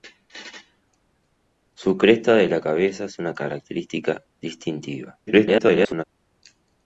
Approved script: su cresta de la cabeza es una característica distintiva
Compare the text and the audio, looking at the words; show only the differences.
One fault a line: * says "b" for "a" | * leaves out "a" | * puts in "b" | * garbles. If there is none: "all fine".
* garbles